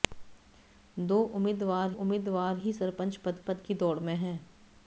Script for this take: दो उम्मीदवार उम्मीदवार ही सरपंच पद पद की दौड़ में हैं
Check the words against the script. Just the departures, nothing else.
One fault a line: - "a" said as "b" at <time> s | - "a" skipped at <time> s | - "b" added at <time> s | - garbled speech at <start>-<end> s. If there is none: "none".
none